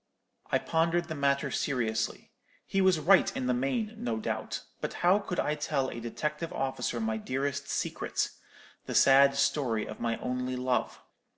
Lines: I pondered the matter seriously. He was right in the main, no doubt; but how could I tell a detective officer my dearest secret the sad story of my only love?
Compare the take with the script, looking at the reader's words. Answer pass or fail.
pass